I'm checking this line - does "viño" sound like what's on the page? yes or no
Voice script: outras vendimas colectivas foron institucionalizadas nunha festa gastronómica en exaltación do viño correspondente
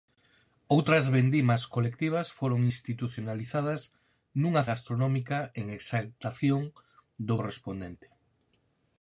no